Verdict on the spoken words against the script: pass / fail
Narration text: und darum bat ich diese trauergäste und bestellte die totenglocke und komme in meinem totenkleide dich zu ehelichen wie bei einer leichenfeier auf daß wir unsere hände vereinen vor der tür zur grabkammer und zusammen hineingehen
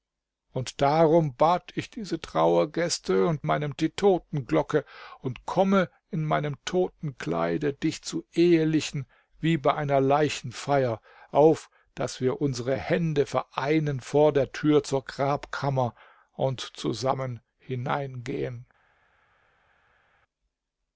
fail